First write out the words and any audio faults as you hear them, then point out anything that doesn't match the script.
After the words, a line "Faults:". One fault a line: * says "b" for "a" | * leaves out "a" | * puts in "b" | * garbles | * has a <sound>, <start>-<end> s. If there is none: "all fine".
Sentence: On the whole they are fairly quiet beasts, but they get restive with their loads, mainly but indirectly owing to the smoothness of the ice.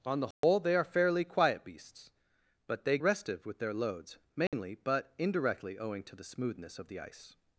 On the whole they are fairly quiet beasts, but they restive with their loads, mainly but indirectly owing to the smoothness of the ice.
Faults:
* has a dropout, 0.3-0.4 s
* leaves out "get"
* has a dropout, 4.5-4.5 s